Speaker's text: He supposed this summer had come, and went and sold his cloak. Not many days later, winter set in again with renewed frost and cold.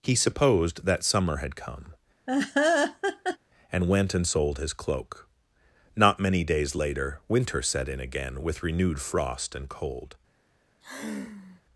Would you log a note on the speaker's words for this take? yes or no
yes